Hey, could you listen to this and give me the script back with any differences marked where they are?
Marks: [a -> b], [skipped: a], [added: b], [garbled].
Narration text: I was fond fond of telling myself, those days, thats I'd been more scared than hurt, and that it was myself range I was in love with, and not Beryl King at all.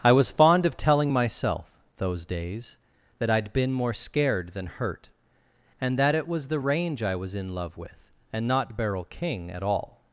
I was fond [skipped: fond] of telling myself, those days, [thats -> that] I'd been more scared than hurt, and that it was [myself -> the] range I was in love with, and not Beryl King at all.